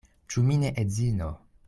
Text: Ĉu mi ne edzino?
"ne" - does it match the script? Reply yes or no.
yes